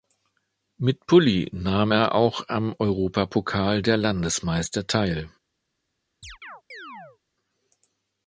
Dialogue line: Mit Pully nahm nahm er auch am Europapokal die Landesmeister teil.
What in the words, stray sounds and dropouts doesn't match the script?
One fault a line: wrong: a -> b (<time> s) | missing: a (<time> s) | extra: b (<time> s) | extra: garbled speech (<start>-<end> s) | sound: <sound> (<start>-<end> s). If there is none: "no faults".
missing: nahm (1.9 s)
wrong: die -> der (3.8 s)
sound: chirp (6.2-7.2 s)